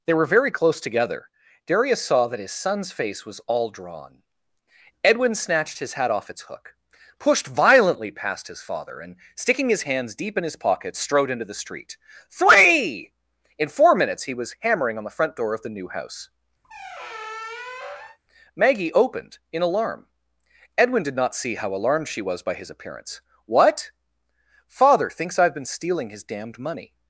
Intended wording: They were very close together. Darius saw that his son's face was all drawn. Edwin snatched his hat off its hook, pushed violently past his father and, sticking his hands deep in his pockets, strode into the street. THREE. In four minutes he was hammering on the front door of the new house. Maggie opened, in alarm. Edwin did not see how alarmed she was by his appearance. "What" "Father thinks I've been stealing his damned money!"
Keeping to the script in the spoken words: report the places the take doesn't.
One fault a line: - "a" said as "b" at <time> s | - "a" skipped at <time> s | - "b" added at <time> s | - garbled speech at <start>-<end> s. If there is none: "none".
none